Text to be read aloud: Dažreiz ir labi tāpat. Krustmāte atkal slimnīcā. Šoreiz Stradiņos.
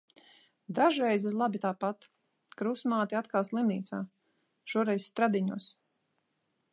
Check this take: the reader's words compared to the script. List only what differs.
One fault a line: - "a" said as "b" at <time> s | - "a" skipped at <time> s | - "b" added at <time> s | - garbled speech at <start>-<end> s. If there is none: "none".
none